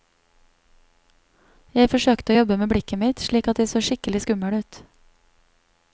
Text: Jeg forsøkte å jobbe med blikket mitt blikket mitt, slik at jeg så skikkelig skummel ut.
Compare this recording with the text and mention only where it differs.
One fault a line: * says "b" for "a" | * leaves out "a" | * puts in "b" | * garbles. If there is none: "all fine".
* leaves out "blikket mitt"